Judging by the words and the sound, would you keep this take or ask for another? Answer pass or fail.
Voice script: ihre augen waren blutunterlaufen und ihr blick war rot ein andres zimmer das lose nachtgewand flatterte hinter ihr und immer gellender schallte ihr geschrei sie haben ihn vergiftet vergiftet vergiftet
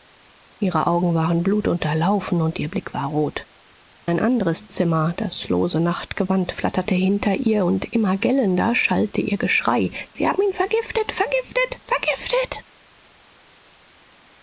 pass